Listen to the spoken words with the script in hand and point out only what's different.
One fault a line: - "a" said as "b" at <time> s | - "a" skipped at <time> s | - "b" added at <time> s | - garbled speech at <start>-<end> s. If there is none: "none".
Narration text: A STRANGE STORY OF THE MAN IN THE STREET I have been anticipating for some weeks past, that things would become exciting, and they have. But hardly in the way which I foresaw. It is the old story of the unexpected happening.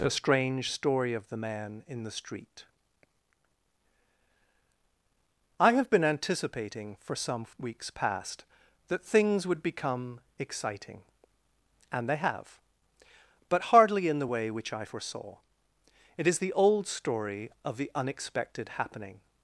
none